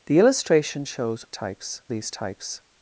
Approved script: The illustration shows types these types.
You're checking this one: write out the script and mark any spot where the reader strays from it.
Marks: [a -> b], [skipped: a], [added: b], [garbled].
The illustration shows types these types.